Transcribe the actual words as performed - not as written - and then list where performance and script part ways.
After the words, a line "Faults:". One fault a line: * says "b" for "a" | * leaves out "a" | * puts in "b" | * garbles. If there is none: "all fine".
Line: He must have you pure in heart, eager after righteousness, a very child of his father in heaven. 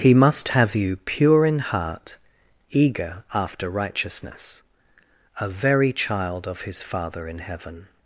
He must have you pure in heart, eager after righteousness, a very child of his father in heaven.
Faults:
all fine